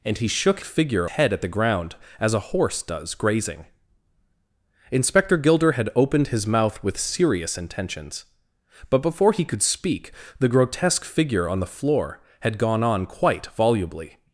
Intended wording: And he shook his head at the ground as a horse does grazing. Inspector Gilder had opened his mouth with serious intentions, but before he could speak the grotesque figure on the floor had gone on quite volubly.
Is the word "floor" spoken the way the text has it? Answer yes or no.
yes